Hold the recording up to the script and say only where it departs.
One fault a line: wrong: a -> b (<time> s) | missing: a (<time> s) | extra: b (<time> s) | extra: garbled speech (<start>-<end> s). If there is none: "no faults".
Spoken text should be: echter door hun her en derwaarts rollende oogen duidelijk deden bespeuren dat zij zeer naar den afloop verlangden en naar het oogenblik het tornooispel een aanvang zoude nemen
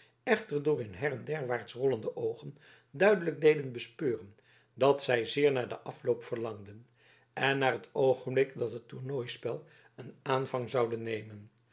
extra: dat (8.6 s)